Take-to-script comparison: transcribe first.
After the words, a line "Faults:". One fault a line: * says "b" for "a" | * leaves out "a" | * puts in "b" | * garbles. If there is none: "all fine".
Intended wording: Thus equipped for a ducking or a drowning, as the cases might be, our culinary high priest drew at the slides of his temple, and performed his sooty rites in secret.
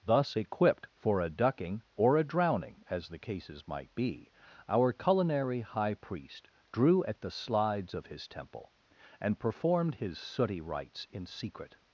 Thus equipped for a ducking or a drowning, as the cases might be, our culinary high priest drew at the slides of his temple, and performed his sooty rites in secret.
Faults:
all fine